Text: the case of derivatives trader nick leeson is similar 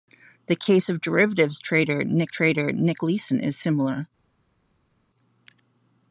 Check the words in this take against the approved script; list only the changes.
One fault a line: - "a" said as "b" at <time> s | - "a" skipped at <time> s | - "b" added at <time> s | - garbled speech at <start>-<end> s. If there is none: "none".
- "trader nick" added at 2.3 s